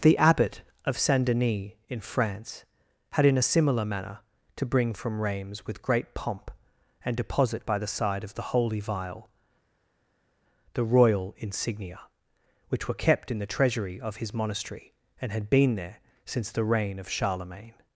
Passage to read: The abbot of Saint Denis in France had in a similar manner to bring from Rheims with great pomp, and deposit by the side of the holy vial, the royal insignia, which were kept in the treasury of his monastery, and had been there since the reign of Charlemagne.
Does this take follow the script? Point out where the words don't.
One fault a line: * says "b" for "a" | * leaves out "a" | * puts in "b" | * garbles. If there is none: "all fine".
all fine